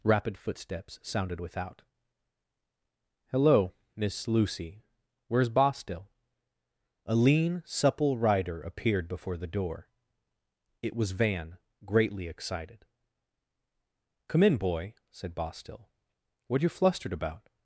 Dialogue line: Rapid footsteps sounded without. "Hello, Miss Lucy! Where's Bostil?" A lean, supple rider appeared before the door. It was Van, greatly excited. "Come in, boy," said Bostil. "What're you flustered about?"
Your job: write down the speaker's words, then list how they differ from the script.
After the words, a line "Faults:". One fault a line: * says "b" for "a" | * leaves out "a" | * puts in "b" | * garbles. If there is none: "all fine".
Rapid footsteps sounded without. "Hello, Miss Lucy! Where's Bostil?" A lean, supple rider appeared before the door. It was Van, greatly excited. "Come in, boy," said Bostil. "What're you flustered about?"
Faults:
all fine